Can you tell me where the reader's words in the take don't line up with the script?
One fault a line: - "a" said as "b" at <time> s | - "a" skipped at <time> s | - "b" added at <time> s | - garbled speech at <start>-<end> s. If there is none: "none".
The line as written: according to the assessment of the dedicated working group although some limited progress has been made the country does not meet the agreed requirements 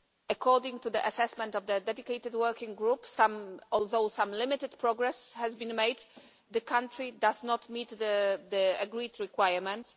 none